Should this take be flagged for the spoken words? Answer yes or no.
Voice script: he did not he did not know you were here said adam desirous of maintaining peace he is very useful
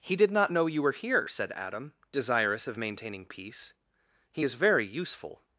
yes